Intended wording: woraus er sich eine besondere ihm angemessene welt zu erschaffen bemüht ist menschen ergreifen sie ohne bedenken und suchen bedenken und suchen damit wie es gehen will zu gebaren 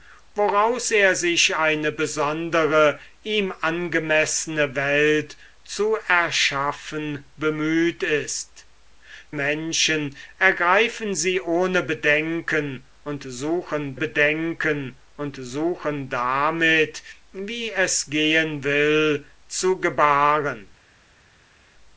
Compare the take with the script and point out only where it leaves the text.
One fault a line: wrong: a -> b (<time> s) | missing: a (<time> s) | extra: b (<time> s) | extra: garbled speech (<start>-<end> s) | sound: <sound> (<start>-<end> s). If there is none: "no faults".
no faults